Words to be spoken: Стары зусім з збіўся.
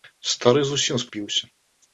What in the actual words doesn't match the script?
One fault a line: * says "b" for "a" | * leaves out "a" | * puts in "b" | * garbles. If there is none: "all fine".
all fine